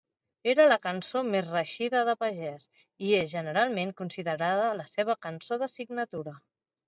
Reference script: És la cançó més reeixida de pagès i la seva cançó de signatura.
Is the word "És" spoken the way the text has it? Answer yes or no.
no